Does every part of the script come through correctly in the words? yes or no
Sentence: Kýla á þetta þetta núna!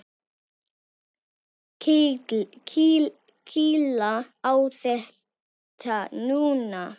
no